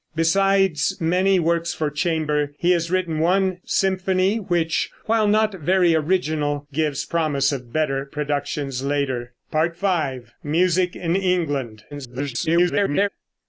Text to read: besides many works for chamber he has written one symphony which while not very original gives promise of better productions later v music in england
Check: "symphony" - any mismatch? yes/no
no